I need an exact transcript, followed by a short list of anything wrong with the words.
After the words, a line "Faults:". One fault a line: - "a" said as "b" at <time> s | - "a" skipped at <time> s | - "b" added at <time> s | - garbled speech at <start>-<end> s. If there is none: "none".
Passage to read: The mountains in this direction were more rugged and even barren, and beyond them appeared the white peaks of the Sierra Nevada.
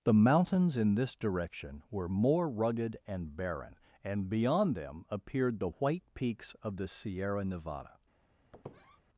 The mountains in this direction were more rugged and barren, and beyond them appeared the white peaks of the Sierra Nevada.
Faults:
- "even" skipped at 3.4 s